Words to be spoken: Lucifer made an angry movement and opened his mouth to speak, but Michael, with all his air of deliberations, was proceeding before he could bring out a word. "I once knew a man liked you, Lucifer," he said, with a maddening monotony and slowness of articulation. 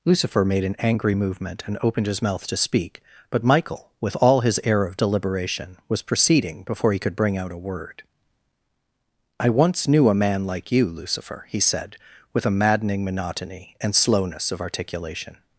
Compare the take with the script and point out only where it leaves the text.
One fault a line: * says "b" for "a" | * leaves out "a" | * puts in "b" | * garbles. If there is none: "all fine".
* says "deliberation" for "deliberations"
* says "like" for "liked"